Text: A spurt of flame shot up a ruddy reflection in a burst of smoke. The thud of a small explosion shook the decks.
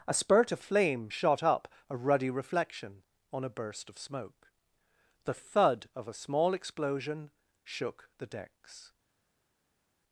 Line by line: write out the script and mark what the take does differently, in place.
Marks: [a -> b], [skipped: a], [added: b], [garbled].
A spurt of flame shot up a ruddy reflection [in -> on] a burst of smoke. The thud of a small explosion shook the decks.